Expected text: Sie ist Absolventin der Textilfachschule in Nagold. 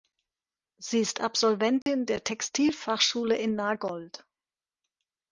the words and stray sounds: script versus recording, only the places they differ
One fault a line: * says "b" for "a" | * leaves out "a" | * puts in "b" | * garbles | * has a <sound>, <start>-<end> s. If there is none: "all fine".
* has a dropout, 1.8-1.9 s